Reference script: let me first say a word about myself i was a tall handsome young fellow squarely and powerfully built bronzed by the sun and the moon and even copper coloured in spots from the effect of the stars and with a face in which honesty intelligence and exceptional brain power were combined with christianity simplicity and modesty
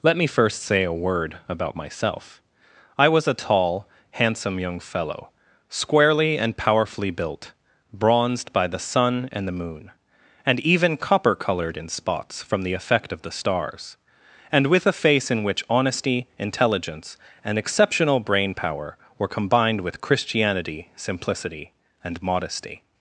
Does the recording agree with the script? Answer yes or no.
yes